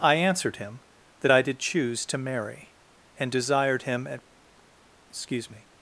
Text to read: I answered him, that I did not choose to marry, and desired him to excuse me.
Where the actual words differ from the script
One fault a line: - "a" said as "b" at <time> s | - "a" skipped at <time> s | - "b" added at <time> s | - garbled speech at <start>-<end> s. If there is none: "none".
- "not" skipped at 1.6 s
- "to" said as "at" at 4.1 s